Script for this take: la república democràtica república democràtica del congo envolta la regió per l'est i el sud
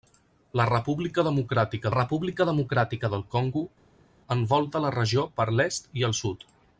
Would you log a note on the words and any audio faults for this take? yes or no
no